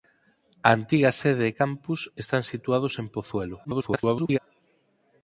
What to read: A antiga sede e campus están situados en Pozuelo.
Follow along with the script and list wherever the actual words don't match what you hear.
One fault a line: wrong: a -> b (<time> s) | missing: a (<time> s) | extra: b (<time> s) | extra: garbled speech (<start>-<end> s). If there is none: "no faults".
extra: garbled speech (3.6-4.4 s)